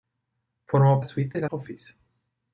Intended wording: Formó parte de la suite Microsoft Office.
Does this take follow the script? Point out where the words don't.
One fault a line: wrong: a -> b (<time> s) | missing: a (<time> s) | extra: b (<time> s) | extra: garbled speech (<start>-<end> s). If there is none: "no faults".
wrong: parte -> suite (1.0 s)
missing: suite Microsoft (1.5 s)